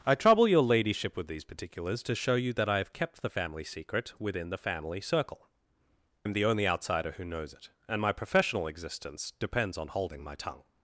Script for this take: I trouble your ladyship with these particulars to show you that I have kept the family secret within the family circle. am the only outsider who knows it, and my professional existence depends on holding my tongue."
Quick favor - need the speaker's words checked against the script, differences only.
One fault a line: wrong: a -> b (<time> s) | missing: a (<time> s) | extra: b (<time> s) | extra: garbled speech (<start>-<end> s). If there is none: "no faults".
no faults